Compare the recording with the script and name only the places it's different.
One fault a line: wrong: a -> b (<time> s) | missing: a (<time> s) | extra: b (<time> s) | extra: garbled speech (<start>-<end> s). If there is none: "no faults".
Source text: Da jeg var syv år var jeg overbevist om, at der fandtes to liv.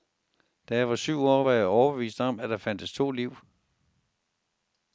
no faults